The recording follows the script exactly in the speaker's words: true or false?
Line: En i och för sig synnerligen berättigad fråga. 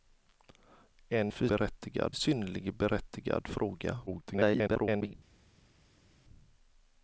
false